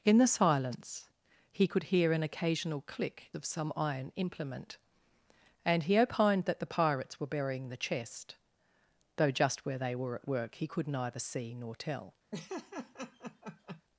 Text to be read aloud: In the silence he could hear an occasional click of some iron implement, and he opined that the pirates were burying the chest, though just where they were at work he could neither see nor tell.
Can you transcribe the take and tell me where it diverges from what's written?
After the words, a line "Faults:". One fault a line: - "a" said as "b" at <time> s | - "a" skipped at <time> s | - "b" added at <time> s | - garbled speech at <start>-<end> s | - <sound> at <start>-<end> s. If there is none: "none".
In the silence he could hear an occasional click of some iron implement, and he opined that the pirates were burying the chest, though just where they were at work he could neither see nor tell.
Faults:
- laugh at 12.3-13.8 s